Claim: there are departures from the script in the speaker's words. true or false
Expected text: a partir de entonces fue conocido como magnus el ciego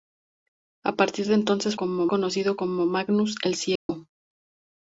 true